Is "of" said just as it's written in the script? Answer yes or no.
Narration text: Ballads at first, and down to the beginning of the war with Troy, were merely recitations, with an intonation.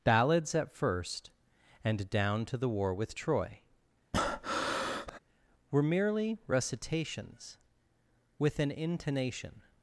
no